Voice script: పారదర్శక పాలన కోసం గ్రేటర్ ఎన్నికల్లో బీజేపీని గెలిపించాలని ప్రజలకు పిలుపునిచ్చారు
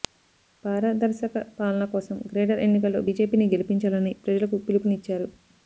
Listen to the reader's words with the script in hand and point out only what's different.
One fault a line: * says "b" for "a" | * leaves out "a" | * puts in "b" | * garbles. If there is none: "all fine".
all fine